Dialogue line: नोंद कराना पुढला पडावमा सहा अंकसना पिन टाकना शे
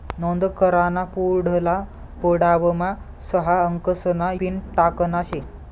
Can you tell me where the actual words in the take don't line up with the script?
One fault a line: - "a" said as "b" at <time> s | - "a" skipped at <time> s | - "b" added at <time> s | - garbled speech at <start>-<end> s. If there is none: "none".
none